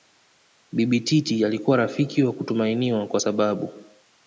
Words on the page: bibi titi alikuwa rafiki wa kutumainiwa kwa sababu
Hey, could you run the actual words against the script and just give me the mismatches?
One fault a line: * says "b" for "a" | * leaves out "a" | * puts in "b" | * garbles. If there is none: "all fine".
all fine